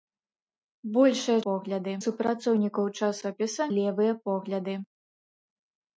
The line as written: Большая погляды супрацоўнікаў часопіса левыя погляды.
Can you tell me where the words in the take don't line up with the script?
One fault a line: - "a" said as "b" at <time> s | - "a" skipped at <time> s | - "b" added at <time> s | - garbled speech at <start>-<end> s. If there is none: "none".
none